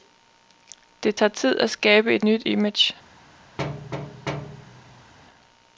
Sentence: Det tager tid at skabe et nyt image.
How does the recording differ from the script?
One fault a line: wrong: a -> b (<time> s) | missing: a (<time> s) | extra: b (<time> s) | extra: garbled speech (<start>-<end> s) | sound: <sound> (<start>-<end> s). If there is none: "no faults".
sound: thud (3.6-5.1 s)